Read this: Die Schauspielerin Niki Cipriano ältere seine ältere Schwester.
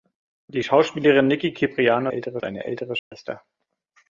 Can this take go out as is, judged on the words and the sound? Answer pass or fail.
fail